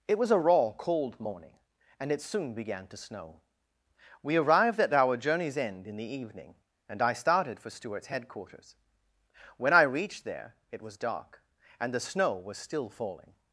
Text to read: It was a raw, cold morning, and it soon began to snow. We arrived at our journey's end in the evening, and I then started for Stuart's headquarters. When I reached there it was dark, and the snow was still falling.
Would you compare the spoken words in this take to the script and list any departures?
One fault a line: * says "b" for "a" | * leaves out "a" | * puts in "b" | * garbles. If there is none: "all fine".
* leaves out "then"